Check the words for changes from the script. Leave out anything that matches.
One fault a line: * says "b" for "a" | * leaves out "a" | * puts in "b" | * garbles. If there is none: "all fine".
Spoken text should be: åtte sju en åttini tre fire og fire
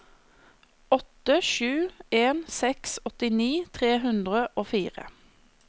* puts in "seks"
* says "hundre" for "fire"